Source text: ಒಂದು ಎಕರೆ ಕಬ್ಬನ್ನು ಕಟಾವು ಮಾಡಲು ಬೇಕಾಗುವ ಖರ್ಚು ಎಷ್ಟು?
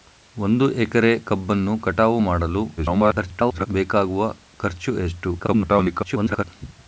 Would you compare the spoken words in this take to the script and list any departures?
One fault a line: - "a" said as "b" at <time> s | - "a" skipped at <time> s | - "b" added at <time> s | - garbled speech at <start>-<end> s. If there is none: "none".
- garbled speech at 2.8-3.7 s
- garbled speech at 5.4-6.4 s